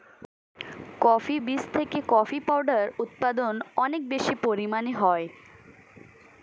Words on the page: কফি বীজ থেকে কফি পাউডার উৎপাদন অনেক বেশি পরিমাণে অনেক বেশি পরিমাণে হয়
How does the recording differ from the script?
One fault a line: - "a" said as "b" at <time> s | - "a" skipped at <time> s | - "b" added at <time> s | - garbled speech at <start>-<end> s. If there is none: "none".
- "অনেক বেশি পরিমাণে" skipped at 4.9 s